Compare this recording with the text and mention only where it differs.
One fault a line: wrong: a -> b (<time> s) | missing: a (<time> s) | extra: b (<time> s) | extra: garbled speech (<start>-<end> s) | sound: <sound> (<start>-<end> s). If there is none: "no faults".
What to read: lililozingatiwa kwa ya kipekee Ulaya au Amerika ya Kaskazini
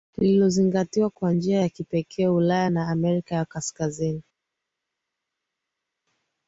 extra: njia (1.3 s)
wrong: au -> na (2.7 s)